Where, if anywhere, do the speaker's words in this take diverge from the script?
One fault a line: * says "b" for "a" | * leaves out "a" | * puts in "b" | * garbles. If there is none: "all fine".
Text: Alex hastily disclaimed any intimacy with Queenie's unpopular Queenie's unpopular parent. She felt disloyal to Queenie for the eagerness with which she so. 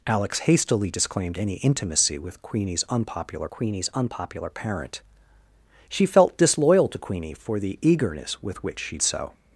all fine